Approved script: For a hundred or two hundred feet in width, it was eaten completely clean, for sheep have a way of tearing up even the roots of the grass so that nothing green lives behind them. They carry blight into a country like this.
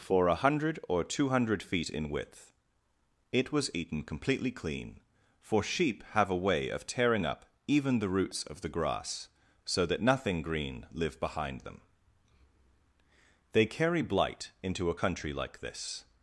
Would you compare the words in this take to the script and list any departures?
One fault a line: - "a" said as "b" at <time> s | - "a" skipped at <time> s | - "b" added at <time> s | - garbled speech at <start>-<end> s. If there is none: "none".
- "lives" said as "live" at 10.9 s